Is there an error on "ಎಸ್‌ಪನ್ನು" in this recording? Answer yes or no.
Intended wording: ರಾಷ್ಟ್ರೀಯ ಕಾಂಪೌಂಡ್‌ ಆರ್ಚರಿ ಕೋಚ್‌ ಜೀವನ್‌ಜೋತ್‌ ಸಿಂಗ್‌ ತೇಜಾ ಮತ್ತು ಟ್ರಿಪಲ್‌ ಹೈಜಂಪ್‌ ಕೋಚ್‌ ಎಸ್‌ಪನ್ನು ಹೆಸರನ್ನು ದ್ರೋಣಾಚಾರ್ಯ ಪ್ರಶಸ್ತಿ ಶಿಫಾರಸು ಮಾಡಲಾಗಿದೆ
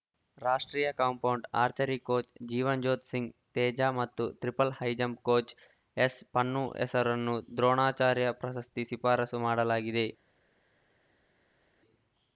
no